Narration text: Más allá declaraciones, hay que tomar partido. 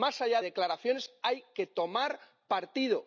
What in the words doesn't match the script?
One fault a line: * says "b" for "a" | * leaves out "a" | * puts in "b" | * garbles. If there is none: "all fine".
all fine